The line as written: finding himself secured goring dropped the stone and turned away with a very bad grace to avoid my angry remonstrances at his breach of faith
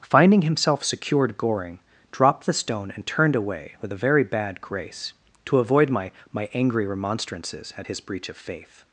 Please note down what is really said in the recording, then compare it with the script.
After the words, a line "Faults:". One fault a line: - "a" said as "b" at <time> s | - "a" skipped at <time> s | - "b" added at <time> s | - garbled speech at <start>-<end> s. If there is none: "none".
finding himself secured goring dropped the stone and turned away with a very bad grace to avoid my my angry remonstrances at his breach of faith
Faults:
- "my" added at 6.3 s